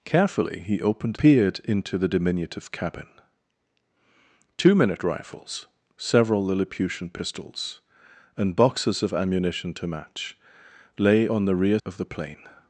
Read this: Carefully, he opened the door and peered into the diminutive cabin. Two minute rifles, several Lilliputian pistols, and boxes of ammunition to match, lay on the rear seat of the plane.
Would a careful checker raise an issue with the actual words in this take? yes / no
yes